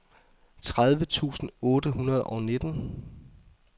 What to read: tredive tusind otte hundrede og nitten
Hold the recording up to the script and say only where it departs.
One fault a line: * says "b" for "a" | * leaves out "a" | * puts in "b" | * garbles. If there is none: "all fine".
all fine